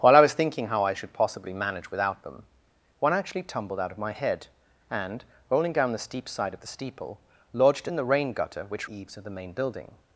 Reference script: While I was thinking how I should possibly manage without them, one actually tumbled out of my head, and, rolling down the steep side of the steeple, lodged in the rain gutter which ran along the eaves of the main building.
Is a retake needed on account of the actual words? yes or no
yes